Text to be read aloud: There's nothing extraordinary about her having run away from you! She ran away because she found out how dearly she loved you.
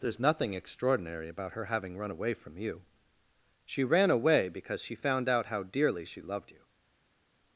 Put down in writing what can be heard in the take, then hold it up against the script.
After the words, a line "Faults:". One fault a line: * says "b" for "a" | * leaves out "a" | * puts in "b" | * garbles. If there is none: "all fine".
There's nothing extraordinary about her having run away from you! She ran away because she found out how dearly she loved you.
Faults:
all fine